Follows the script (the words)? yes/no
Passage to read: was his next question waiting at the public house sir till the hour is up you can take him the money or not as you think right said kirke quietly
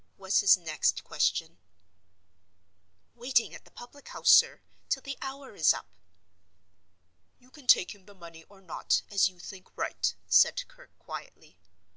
yes